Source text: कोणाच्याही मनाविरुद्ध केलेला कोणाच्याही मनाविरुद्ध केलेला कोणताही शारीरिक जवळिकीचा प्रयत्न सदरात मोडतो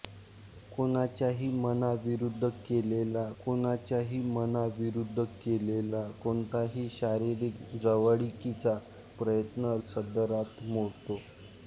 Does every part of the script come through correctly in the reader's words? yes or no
yes